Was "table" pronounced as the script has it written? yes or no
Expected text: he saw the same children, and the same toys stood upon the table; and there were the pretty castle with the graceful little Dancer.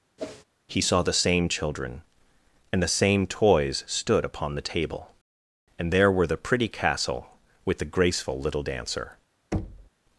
yes